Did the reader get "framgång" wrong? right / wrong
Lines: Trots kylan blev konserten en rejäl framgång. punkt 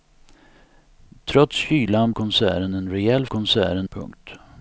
wrong